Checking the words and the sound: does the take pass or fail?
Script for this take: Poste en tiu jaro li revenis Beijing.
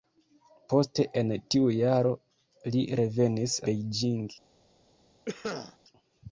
fail